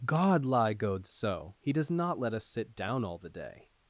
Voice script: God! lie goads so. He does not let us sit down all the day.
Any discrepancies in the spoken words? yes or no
no